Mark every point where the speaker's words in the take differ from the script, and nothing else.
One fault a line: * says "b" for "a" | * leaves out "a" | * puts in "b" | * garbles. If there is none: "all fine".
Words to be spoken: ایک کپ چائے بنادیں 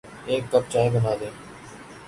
all fine